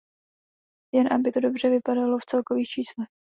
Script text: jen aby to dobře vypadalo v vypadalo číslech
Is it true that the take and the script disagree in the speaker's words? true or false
true